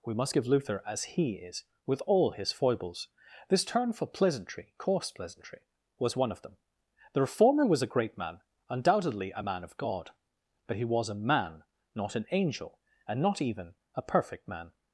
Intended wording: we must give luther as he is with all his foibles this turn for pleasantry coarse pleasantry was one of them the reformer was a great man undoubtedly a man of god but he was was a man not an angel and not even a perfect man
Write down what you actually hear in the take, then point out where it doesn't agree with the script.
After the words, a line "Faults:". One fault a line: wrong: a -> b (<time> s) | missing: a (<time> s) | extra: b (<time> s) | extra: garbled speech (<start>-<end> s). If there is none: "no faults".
we must give luther as he is with all his foibles this turn for pleasantry coarse pleasantry was one of them the reformer was a great man undoubtedly a man of god but he was a man not an angel and not even a perfect man
Faults:
missing: was (11.1 s)